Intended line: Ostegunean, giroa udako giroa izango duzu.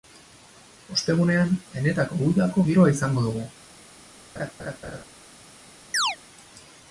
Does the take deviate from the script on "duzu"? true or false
true